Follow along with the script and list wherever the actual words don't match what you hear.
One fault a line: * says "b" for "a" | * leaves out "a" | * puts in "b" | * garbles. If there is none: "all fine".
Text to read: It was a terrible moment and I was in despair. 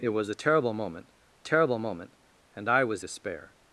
* puts in "terrible moment"
* leaves out "in"